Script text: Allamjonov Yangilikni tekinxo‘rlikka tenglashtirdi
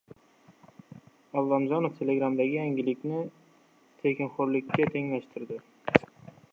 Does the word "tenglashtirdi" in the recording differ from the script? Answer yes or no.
no